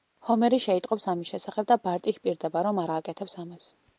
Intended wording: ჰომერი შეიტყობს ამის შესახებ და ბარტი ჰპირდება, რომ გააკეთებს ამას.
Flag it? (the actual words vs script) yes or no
no